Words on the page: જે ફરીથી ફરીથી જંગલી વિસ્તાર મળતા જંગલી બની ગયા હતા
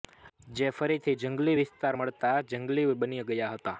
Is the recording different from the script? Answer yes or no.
yes